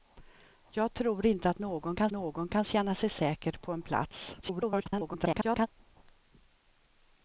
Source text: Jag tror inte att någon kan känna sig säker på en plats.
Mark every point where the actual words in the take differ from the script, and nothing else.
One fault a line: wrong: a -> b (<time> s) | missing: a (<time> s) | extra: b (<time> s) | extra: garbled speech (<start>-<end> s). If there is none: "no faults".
extra: någon kan (2.1 s)
extra: garbled speech (4.4-5.7 s)